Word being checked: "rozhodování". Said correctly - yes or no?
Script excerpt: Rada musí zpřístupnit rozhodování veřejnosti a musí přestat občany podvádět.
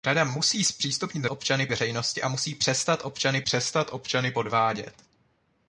no